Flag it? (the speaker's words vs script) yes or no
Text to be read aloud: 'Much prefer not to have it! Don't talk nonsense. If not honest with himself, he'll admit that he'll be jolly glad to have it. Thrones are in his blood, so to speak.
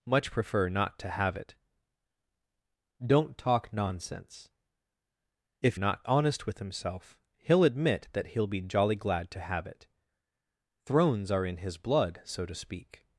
no